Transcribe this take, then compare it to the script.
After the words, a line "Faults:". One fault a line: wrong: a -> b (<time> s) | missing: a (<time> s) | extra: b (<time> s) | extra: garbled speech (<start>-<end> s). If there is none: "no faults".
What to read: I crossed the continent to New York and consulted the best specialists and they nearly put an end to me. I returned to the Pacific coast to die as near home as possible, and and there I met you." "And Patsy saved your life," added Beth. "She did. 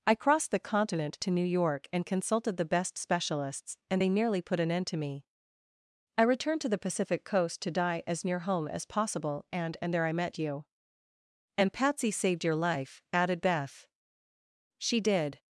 I crossed the continent to New York and consulted the best specialists and they nearly put an end to me. I returned to the Pacific coast to die as near home as possible, and and there I met you." "And Patsy saved your life," added Beth. "She did.
Faults:
no faults